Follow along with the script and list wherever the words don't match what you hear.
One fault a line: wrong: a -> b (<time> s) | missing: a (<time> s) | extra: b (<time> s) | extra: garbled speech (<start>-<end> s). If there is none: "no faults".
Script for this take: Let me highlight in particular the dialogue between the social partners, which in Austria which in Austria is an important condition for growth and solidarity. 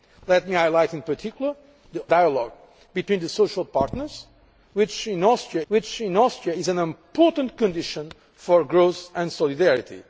no faults